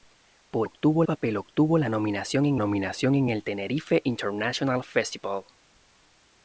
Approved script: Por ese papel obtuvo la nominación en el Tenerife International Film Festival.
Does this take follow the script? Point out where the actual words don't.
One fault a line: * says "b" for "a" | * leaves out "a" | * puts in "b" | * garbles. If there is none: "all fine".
* says "obtuvo" for "ese"
* puts in "nominación en"
* leaves out "Film"